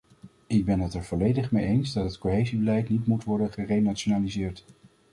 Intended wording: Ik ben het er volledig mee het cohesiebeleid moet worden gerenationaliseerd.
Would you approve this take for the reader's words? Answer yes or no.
no